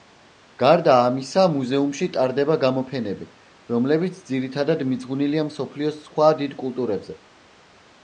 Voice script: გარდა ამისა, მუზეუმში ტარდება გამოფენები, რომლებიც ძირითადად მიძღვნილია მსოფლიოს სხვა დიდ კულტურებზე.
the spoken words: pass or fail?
pass